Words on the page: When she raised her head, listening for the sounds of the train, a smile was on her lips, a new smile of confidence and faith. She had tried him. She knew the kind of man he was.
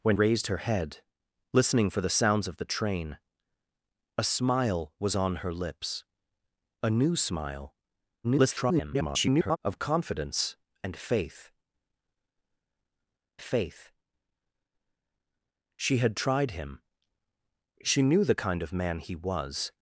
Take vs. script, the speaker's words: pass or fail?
fail